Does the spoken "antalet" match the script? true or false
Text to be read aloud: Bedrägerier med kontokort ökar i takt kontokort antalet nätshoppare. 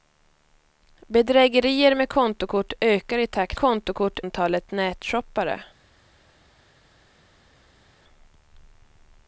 true